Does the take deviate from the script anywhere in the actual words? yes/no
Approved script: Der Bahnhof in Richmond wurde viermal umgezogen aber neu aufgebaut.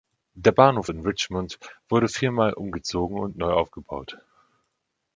yes